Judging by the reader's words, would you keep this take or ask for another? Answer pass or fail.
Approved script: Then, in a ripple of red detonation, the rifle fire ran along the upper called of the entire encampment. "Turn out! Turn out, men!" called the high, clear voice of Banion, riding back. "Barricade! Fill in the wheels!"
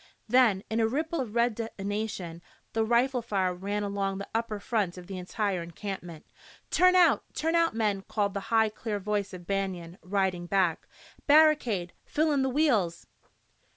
fail